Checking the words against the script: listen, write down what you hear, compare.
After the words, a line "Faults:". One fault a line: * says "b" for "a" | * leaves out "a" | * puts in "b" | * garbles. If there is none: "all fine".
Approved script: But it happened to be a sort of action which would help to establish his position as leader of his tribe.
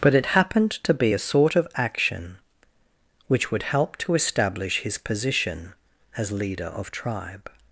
But it happened to be a sort of action which would help to establish his position as leader of tribe.
Faults:
* leaves out "his"